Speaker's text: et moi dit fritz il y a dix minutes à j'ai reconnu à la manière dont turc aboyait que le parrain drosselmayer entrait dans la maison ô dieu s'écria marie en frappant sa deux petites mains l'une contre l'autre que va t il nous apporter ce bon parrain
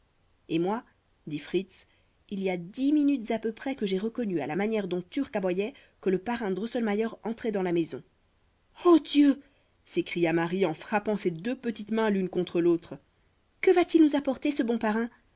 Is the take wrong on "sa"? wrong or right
wrong